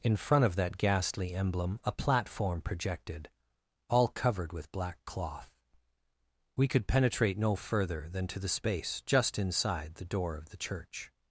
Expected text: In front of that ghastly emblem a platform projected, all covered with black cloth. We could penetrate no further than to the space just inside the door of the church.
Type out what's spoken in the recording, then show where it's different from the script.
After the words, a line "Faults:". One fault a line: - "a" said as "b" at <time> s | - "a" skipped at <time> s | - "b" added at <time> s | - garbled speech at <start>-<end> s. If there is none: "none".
In front of that ghastly emblem a platform projected, all covered with black cloth. We could penetrate no further than to the space just inside the door of the church.
Faults:
none